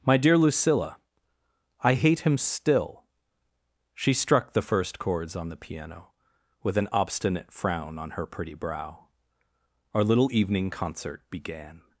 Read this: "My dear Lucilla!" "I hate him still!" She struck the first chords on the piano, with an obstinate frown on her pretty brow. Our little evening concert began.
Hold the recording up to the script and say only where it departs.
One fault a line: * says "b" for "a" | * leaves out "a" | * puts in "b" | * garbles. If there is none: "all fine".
all fine